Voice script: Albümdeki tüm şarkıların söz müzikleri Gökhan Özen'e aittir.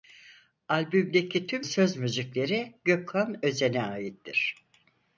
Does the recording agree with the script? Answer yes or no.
no